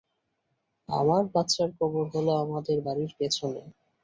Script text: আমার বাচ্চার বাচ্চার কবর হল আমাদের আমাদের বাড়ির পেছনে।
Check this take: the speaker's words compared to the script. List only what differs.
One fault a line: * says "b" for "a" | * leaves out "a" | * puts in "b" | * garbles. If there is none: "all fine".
* leaves out "বাচ্চার"
* leaves out "আমাদের"